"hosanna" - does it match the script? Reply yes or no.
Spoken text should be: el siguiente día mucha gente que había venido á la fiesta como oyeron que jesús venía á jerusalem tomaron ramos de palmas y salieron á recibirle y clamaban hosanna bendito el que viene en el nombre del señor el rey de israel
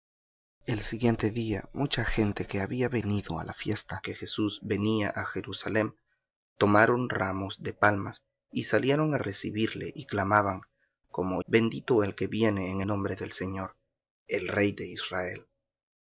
no